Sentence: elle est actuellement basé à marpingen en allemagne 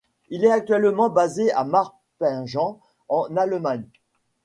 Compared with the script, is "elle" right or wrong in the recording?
wrong